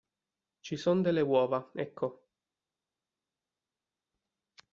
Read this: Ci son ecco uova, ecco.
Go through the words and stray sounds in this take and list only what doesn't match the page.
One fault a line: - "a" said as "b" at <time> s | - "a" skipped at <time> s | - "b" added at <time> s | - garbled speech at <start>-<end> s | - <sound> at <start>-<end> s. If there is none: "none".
- "ecco" said as "delle" at 1.0 s